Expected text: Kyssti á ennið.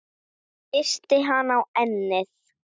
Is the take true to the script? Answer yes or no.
no